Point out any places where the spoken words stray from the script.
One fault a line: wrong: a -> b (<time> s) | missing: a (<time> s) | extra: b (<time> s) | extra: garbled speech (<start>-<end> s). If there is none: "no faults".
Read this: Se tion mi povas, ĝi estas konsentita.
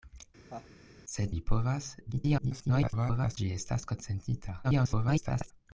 missing: tion (1.2 s)
extra: garbled speech (2.1-3.4 s)
extra: garbled speech (4.6-5.5 s)